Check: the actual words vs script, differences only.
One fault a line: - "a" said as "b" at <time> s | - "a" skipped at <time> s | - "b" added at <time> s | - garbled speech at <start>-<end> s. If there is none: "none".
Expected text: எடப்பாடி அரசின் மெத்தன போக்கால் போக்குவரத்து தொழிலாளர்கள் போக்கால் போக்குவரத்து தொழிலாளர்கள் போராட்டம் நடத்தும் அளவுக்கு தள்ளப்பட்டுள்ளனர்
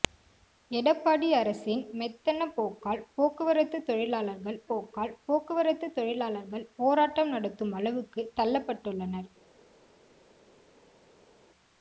none